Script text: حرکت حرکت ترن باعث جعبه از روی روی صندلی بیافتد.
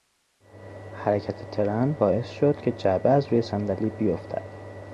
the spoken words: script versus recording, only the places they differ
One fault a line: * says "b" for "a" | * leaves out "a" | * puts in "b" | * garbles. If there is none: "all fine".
* leaves out "حرکت"
* puts in "شد که"
* leaves out "روی"